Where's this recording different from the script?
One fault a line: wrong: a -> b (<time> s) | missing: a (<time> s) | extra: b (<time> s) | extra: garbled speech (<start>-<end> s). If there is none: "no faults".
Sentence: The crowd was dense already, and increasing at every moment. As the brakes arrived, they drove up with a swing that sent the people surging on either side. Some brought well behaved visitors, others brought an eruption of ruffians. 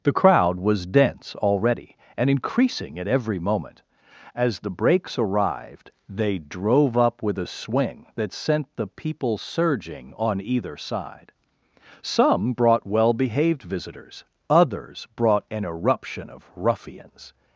no faults